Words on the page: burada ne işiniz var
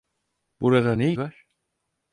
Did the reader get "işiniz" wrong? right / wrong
wrong